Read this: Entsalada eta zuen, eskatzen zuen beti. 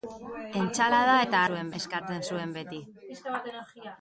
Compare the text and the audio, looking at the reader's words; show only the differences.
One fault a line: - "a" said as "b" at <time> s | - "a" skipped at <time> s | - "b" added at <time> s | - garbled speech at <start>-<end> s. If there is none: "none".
none